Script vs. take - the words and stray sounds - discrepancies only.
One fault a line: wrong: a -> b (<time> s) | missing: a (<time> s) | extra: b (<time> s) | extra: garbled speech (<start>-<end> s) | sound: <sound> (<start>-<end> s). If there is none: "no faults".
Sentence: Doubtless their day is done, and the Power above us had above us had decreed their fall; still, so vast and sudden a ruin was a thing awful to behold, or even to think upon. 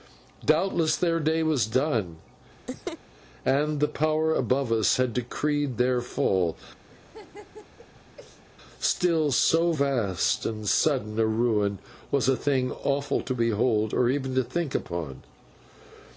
wrong: is -> was (1.4 s)
sound: laugh (2.7-3.0 s)
missing: above us had (5.1 s)
sound: laugh (6.9-8.4 s)